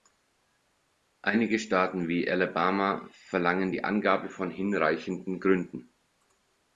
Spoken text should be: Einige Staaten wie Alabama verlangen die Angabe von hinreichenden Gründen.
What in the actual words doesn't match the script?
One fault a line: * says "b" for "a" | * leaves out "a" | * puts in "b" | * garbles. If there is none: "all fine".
all fine